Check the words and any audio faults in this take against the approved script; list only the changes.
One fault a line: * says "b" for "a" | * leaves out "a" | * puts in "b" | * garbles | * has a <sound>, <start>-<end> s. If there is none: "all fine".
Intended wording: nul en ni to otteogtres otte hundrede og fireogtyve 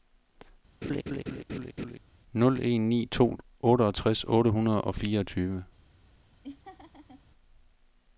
* has a laugh, 0.8-2.0 s
* has a laugh, 6.4-7.2 s